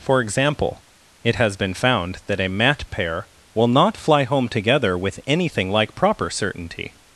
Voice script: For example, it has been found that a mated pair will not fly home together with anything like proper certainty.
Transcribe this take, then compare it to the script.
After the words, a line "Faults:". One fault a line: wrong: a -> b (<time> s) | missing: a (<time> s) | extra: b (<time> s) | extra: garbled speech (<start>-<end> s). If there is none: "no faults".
For example, it has been found that a mat pair will not fly home together with anything like proper certainty.
Faults:
wrong: mated -> mat (2.5 s)